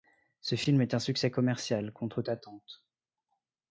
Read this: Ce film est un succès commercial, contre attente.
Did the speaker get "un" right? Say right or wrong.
right